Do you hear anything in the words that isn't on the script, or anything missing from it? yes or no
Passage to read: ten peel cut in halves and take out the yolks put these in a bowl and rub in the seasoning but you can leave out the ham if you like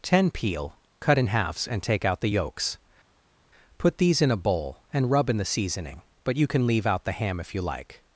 no